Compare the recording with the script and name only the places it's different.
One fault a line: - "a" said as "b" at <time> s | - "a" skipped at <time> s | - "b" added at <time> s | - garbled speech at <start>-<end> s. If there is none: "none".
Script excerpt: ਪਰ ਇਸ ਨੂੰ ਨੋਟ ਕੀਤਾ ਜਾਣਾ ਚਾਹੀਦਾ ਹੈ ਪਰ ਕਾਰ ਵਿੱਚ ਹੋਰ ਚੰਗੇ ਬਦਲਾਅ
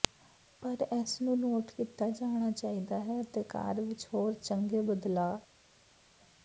- "ਪਰ" said as "ਅਤੇ" at 3.2 s